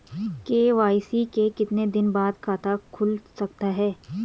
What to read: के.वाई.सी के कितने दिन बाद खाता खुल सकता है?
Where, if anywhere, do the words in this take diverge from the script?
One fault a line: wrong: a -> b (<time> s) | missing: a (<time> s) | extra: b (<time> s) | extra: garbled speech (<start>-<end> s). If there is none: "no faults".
no faults